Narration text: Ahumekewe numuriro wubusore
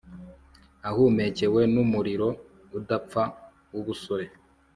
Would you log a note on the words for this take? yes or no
yes